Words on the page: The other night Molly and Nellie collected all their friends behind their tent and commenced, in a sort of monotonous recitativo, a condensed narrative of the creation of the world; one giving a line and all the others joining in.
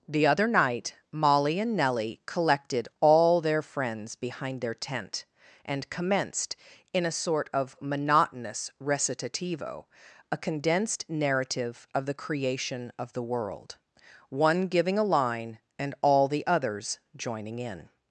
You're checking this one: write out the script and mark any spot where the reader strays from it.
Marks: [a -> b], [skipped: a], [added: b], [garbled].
The other night Molly and Nellie collected all their friends behind their tent and commenced, in a sort of monotonous recitativo, a condensed narrative of the creation of the world; one giving a line and all the others joining in.